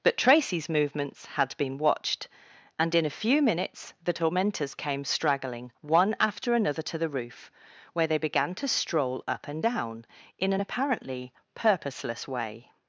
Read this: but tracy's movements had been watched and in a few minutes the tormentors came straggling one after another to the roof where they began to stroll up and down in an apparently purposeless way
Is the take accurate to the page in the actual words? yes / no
yes